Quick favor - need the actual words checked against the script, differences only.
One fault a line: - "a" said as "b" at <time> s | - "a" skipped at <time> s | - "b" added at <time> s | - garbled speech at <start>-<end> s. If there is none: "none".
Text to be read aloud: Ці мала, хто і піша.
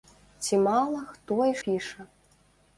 none